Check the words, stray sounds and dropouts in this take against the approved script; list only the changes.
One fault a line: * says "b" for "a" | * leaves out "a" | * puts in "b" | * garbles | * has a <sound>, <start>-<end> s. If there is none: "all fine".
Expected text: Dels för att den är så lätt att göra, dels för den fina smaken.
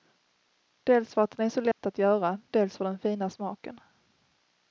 * has a dropout, 1.7-1.8 s